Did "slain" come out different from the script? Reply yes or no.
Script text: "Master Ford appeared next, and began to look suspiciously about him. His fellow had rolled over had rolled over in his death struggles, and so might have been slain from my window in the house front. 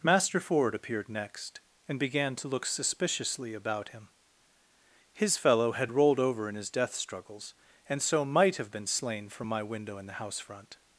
no